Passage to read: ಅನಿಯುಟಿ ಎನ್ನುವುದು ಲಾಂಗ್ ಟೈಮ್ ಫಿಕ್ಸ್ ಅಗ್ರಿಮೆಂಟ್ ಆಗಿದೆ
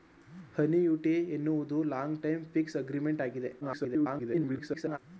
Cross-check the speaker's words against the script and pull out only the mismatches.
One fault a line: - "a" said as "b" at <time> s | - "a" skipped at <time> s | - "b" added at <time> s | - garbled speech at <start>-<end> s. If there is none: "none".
- garbled speech at 3.6-5.0 s